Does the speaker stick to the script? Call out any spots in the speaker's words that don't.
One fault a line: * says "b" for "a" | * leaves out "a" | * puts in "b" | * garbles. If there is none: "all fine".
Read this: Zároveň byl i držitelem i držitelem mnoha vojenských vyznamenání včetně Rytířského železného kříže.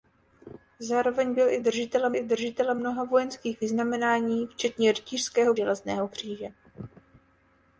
all fine